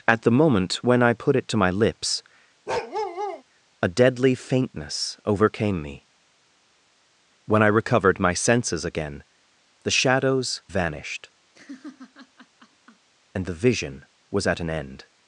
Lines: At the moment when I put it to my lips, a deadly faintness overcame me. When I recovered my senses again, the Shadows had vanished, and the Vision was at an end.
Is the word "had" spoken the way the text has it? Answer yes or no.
no